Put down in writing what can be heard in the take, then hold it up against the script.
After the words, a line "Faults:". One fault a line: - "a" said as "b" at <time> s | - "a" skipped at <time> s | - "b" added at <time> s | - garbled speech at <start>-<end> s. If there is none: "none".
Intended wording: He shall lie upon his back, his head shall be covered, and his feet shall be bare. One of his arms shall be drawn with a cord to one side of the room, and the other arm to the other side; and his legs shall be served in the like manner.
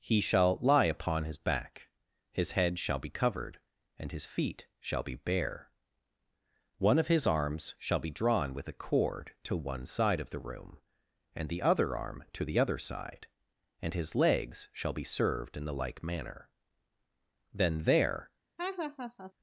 He shall lie upon his back, his head shall be covered, and his feet shall be bare. One of his arms shall be drawn with a cord to one side of the room, and the other arm to the other side; and his legs shall be served in the like manner. Then there
Faults:
- "Then there" added at 17.5 s